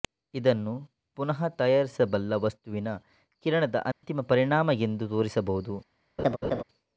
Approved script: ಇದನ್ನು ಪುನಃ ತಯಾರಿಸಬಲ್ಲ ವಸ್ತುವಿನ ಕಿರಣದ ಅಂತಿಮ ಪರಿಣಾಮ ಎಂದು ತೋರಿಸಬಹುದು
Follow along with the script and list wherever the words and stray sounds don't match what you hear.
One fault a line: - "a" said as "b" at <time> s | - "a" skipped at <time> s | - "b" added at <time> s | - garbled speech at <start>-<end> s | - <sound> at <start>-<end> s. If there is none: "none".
- dropout at 3.9-4.0 s
- laugh at 6.2-6.6 s